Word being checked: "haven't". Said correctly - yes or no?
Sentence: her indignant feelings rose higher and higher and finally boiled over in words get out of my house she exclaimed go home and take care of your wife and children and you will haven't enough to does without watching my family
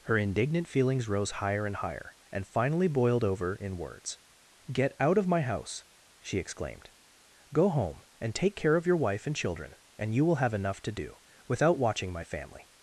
no